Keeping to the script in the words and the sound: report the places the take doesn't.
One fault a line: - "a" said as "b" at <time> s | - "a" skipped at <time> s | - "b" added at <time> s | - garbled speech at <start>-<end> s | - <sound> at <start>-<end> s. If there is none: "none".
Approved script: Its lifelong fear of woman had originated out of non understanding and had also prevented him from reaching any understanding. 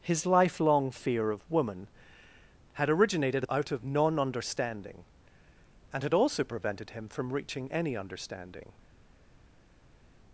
- "Its" said as "His" at 0.0 s